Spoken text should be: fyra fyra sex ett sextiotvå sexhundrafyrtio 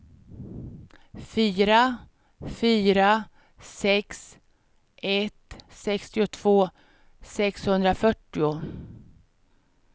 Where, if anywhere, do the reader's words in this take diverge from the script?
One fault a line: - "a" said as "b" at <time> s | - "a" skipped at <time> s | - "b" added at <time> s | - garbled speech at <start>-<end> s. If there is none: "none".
none